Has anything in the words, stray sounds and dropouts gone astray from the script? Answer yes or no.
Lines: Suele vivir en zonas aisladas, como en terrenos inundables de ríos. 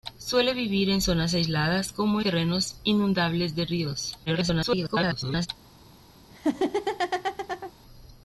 yes